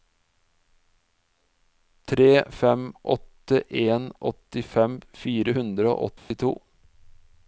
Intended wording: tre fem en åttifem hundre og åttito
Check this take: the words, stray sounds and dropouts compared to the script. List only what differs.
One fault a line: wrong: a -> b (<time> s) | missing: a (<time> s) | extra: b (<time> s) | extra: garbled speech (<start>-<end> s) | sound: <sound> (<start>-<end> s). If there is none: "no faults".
extra: åtte (3.1 s)
extra: fire (5.2 s)
sound: dropout (6.2-6.3 s)